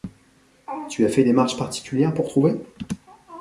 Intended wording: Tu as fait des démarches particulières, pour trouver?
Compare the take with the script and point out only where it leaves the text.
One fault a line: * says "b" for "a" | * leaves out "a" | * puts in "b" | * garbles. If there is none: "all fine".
* leaves out "des"